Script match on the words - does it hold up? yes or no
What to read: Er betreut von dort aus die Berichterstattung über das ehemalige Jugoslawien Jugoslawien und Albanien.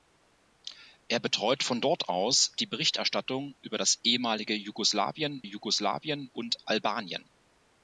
yes